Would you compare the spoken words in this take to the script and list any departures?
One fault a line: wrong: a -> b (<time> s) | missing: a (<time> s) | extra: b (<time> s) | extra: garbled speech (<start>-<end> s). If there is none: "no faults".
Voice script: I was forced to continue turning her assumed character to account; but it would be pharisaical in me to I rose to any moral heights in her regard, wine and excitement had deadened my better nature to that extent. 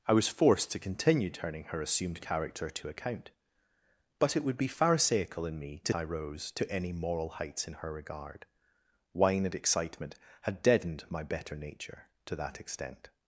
no faults